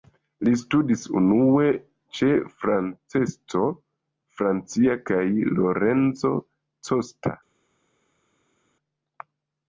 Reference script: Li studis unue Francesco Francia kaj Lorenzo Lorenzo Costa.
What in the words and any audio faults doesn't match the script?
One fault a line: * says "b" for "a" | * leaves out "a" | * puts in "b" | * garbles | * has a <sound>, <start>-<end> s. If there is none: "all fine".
* puts in "ĉe"
* leaves out "Lorenzo"